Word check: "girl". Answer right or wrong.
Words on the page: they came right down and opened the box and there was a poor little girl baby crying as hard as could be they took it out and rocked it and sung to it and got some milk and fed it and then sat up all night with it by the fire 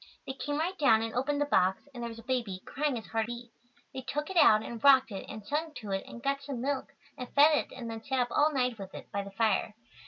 wrong